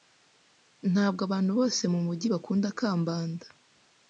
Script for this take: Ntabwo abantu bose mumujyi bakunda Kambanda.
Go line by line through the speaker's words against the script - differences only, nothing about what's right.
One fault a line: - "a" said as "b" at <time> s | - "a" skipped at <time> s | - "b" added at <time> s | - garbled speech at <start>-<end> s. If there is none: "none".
none